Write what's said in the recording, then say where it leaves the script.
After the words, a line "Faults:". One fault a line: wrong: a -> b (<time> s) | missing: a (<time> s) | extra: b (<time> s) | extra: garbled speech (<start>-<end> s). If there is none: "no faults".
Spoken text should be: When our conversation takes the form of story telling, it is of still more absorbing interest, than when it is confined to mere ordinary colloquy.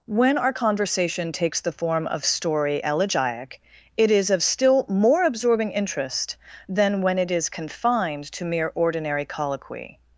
When our conversation takes the form of story elegiac, it is of still more absorbing interest, than when it is confined to mere ordinary colloquy.
Faults:
wrong: telling -> elegiac (2.8 s)